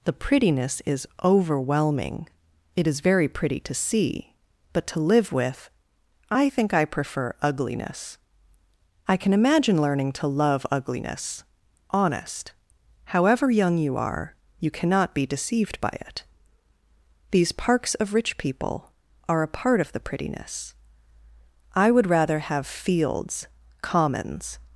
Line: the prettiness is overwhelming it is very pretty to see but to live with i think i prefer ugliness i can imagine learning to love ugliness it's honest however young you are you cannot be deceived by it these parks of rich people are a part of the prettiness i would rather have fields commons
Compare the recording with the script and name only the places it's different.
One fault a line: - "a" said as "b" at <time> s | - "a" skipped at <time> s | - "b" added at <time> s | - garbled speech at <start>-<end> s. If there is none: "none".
- "it's" skipped at 11.4 s